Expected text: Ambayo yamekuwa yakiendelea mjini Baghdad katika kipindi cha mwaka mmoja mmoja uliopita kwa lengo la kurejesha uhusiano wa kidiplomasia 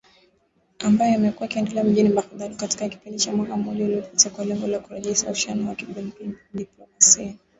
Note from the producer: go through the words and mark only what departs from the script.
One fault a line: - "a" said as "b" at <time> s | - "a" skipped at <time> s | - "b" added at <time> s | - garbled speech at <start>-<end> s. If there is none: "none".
- "mmoja" skipped at 3.9 s